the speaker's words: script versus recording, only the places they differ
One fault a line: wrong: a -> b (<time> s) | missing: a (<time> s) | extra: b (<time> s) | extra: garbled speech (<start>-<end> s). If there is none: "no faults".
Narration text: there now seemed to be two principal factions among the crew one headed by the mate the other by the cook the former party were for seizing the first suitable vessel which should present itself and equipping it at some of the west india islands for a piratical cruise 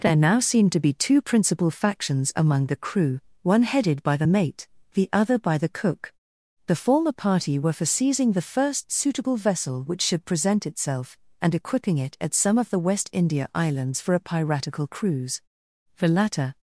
extra: the latter (16.0 s)